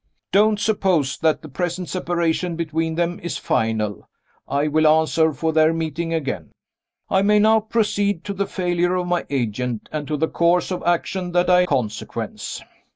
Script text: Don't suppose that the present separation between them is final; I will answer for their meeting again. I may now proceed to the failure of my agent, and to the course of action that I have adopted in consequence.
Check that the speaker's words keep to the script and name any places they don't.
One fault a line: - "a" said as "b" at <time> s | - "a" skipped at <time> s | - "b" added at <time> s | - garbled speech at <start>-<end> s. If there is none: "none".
- "have adopted in" skipped at 11.7 s